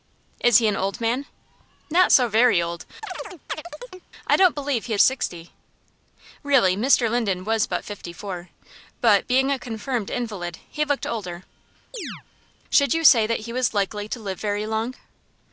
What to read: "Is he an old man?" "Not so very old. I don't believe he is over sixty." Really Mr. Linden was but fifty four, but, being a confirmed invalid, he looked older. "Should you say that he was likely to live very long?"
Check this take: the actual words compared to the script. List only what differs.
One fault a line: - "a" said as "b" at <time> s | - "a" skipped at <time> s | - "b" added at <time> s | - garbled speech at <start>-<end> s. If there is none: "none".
- "is over" skipped at 4.9 s